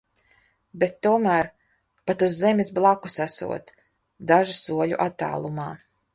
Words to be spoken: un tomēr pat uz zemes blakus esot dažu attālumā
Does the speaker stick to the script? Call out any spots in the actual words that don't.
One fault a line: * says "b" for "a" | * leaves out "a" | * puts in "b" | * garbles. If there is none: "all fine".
* says "bet" for "un"
* puts in "soļu"